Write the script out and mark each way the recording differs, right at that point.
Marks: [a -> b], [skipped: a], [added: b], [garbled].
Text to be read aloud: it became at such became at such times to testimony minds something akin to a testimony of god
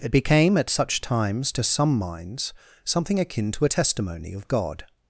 it became at such [skipped: became at such] times to [testimony -> some] minds something akin to a testimony of god